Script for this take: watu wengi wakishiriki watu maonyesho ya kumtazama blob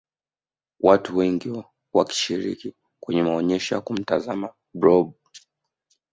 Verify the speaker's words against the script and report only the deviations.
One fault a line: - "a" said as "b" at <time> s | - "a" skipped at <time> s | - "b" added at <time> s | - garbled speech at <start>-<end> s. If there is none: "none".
- "watu" said as "kwenye" at 3.0 s